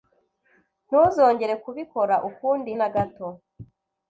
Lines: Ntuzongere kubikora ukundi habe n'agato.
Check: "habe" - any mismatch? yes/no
yes